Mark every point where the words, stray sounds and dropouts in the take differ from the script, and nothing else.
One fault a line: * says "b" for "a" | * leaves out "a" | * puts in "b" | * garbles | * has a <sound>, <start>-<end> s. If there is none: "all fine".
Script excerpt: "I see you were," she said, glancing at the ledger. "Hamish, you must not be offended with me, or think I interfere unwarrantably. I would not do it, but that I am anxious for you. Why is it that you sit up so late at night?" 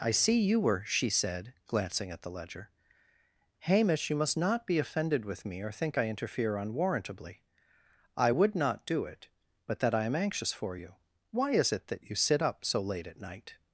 all fine